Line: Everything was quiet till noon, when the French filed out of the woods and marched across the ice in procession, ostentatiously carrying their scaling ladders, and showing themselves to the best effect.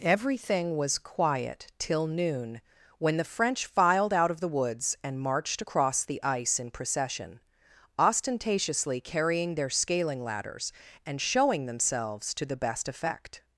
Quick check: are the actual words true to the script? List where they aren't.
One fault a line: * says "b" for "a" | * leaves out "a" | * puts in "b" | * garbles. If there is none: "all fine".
all fine